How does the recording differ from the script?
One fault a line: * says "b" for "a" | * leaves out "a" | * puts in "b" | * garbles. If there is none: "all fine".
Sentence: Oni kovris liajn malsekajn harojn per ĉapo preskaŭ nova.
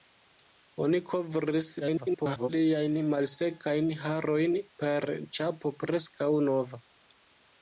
* garbles